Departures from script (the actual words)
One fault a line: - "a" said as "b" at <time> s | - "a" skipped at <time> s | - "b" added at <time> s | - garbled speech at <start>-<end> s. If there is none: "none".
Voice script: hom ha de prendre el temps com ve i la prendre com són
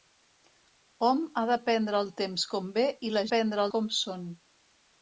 none